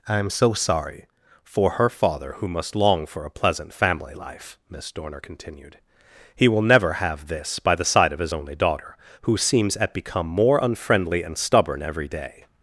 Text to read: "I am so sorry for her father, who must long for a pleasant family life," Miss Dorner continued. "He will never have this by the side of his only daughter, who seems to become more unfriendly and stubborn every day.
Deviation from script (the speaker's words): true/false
true